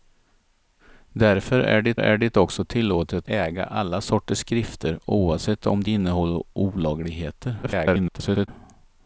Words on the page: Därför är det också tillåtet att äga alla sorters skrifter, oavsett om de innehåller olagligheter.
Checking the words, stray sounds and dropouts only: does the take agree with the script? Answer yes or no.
no